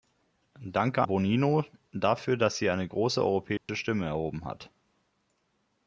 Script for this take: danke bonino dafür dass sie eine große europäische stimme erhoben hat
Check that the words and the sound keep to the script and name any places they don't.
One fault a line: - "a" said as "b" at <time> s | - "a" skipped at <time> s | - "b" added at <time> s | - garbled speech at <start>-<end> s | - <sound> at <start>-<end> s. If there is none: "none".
- dropout at 3.6-3.7 s